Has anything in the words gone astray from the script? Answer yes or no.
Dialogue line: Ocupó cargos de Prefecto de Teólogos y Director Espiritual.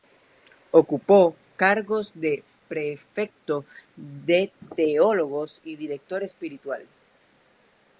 no